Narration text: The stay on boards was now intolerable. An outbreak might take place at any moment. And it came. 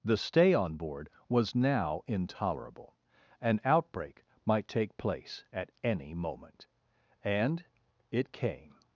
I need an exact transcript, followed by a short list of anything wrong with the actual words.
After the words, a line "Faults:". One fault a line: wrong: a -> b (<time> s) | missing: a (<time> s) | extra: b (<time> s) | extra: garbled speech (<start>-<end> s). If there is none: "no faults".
The stay on board was now intolerable. An outbreak might take place at any moment. And it came.
Faults:
wrong: boards -> board (0.8 s)